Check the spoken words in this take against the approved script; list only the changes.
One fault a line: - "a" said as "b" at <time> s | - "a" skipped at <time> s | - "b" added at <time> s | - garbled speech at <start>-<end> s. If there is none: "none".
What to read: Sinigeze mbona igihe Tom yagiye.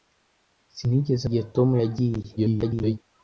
- "mbona" skipped at 1.2 s
- garbled speech at 2.4-3.0 s